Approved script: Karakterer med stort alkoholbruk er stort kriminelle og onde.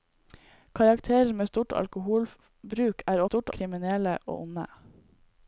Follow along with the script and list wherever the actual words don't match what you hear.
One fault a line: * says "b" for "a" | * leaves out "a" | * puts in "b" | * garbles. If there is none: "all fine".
all fine